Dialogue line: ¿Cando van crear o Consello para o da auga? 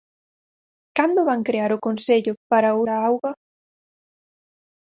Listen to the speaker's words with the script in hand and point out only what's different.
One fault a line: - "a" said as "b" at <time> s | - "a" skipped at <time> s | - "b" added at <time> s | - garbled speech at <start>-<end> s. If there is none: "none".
none